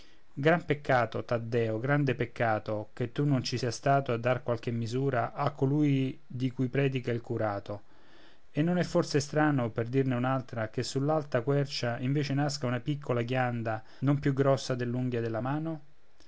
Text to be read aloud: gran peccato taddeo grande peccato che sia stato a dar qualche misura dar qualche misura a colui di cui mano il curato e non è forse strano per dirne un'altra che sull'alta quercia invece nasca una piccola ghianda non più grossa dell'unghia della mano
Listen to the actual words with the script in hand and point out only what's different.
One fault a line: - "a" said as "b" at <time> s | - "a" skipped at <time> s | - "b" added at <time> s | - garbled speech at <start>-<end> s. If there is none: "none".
- "tu non ci" added at 3.1 s
- "dar qualche misura" skipped at 5.3 s
- "mano" said as "predica" at 6.7 s